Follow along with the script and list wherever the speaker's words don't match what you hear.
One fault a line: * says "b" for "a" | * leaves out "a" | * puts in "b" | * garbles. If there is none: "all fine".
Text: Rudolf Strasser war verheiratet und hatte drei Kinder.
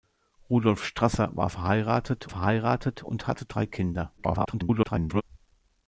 * puts in "verheiratet"
* garbles